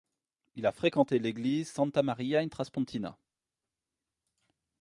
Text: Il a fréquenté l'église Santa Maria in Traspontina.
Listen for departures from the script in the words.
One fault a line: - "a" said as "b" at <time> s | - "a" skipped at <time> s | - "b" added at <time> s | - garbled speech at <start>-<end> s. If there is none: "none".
none